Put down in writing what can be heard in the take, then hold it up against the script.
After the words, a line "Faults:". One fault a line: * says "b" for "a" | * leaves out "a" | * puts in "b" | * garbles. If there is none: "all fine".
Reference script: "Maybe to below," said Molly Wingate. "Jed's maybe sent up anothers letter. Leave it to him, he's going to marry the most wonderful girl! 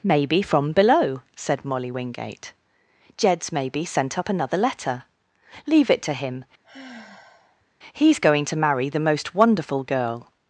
"Maybe from below," said Molly Wingate. "Jed's maybe sent up another letter. Leave it to him, he's going to marry the most wonderful girl!
Faults:
* says "from" for "to"
* says "another" for "anothers"